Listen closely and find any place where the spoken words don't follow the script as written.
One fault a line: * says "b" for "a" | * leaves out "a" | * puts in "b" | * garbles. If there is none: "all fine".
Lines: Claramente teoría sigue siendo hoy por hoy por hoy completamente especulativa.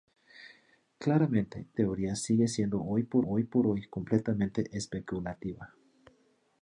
all fine